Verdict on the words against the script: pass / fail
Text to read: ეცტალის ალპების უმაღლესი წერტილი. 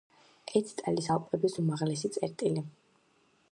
pass